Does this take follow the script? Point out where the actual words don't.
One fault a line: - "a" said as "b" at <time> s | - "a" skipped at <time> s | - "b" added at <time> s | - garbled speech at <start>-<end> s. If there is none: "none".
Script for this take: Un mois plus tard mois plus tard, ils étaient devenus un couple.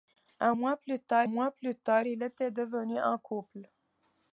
none